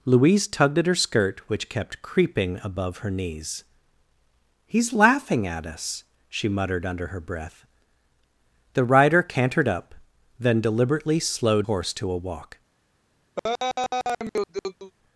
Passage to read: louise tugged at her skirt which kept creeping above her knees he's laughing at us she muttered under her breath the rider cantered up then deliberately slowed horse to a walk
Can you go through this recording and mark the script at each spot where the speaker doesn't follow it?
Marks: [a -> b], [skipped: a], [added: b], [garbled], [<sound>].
louise tugged at her skirt which kept creeping above her knees he's laughing at us she muttered under her breath the rider cantered up then deliberately slowed horse to a walk [laugh]